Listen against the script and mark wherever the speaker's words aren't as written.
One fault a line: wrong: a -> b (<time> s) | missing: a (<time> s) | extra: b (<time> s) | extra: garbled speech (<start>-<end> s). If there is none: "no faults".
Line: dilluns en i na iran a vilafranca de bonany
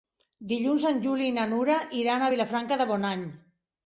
extra: juli (1.0 s)
extra: nura (1.5 s)